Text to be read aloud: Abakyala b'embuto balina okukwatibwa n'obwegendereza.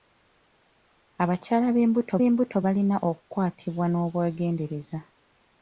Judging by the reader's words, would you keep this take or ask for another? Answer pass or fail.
fail